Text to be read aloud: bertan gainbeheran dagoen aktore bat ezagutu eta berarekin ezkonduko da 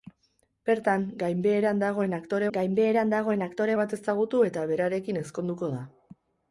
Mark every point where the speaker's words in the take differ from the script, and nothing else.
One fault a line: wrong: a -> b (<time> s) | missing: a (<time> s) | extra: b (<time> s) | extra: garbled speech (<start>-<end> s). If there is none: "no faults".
extra: gainbeheran dagoen aktore (2.6 s)